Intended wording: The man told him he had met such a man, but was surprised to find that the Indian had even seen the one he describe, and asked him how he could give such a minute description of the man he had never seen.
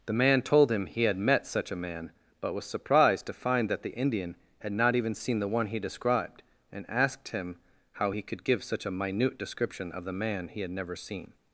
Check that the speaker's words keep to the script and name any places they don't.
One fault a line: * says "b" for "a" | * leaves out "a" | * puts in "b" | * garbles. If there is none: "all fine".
* puts in "not"
* says "described" for "describe"